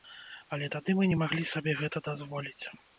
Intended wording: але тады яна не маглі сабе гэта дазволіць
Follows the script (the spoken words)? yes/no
no